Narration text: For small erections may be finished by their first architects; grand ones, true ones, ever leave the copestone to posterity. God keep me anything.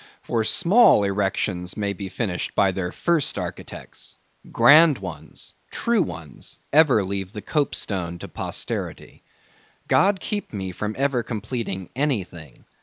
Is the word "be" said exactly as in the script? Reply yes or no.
yes